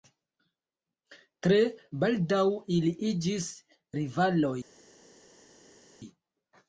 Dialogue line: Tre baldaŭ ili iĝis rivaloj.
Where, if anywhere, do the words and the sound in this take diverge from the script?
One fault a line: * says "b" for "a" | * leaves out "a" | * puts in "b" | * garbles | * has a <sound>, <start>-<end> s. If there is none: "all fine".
all fine